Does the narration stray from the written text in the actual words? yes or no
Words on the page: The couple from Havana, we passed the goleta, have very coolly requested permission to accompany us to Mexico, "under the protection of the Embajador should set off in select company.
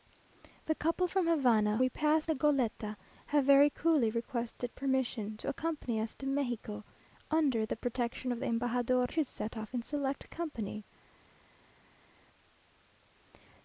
no